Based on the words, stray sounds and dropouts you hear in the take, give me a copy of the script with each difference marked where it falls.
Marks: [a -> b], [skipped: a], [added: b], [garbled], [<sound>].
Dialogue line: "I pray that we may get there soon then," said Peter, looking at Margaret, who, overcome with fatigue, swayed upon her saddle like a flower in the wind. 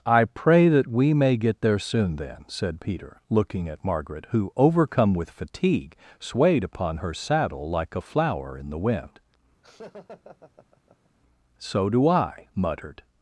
"I pray that we may get there soon then," said Peter, looking at Margaret, who, overcome with fatigue, swayed upon her saddle like a flower in the wind. [laugh] [added: So do I muttered]